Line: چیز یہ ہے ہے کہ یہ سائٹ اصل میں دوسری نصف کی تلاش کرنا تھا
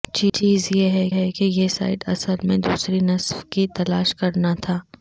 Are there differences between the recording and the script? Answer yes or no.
no